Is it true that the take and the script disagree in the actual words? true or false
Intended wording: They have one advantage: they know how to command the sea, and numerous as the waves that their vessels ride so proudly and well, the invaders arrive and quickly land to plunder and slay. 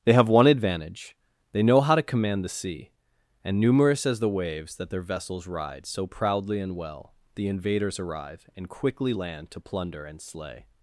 false